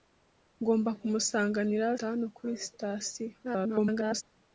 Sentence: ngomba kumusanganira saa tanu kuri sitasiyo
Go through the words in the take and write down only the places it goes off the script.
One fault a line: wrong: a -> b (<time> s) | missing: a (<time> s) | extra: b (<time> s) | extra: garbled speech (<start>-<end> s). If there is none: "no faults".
missing: saa (1.9 s)
extra: garbled speech (3.4-4.2 s)